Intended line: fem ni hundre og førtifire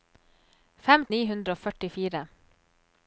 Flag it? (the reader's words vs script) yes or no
no